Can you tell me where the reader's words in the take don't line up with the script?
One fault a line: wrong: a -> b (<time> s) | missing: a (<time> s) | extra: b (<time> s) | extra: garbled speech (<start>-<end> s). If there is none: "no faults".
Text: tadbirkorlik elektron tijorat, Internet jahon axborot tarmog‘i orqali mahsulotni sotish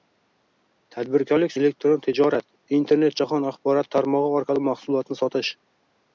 no faults